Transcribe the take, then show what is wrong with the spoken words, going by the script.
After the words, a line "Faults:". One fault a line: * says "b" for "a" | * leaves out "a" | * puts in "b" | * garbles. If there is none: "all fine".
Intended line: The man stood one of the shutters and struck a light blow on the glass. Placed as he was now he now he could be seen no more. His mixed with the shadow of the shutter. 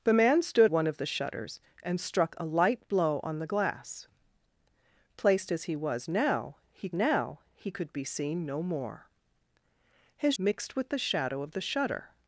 The man stood one of the shutters and struck a light blow on the glass. Placed as he was now he now he could be seen no more. His mixed with the shadow of the shutter.
Faults:
all fine